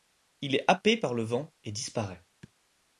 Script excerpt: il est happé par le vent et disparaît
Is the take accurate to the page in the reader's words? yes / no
yes